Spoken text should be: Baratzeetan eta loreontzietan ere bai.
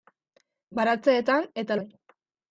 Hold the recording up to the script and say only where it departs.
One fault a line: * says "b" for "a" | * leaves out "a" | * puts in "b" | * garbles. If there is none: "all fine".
* leaves out "loreontzietan ere"